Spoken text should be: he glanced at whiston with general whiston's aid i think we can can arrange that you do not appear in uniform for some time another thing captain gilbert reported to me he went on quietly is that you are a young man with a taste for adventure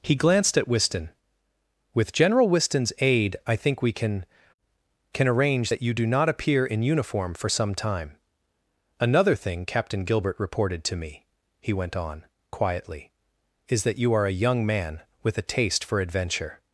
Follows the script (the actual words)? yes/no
yes